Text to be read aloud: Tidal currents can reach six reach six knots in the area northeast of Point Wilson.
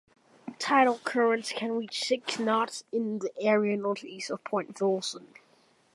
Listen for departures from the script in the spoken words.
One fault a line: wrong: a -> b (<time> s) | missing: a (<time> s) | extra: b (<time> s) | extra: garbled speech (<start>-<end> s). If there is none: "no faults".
missing: reach six (2.4 s)